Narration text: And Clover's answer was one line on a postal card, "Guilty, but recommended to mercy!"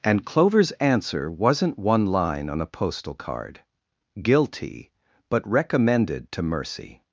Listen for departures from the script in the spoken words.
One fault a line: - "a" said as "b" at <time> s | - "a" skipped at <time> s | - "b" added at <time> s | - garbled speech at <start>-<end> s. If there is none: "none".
- "was" said as "wasn't" at 1.3 s